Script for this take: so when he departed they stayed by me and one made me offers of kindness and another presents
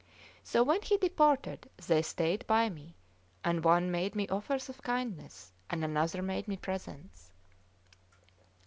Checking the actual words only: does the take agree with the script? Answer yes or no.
no